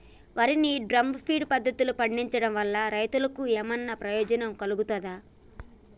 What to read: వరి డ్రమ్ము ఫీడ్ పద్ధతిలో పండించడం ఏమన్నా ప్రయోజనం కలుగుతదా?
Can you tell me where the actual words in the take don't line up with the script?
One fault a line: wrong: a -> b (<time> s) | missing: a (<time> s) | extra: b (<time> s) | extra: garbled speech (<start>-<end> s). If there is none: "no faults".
extra: ని (0.6 s)
extra: వల్ల రైతులకు (2.5 s)